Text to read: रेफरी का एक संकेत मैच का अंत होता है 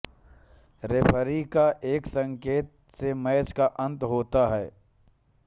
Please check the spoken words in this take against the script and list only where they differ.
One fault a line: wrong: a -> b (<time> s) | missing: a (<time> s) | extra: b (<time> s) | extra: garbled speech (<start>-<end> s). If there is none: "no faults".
extra: से (2.9 s)